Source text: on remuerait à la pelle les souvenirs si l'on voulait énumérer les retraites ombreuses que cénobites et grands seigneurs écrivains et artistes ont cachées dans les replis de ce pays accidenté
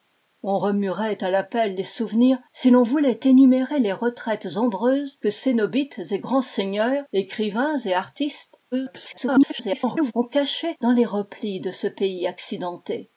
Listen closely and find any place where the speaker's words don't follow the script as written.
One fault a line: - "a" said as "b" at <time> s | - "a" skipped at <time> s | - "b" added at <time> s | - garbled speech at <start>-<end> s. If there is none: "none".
- garbled speech at 8.7-10.1 s